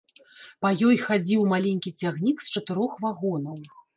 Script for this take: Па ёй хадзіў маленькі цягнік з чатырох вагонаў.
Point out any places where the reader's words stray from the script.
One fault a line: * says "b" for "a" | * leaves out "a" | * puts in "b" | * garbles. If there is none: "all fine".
all fine